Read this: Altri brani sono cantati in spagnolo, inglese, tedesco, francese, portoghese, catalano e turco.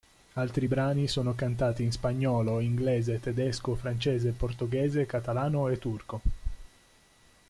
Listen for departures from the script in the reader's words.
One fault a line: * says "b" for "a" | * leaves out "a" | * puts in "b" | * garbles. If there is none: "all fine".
all fine